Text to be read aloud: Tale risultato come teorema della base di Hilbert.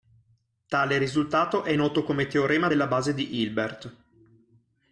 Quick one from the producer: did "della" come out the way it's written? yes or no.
yes